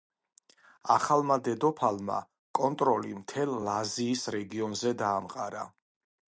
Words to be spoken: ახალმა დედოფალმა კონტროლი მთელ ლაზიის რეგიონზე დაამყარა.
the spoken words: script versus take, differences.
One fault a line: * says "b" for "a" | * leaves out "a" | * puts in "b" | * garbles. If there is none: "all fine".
all fine